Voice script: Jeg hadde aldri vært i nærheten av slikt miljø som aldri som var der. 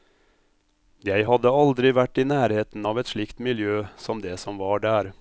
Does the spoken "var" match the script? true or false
true